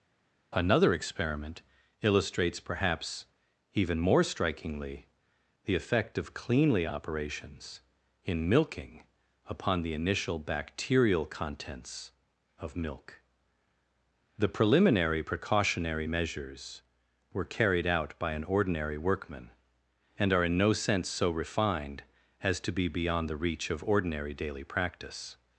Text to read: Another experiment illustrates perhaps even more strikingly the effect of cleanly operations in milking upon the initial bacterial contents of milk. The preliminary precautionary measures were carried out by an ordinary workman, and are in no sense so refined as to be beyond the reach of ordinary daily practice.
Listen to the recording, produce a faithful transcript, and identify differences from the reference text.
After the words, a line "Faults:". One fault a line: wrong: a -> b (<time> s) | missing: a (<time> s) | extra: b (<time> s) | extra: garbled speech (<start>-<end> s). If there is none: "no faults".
Another experiment illustrates perhaps even more strikingly the effect of cleanly operations in milking upon the initial bacterial contents of milk. The preliminary precautionary measures were carried out by an ordinary workman, and are in no sense so refined as to be beyond the reach of ordinary daily practice.
Faults:
no faults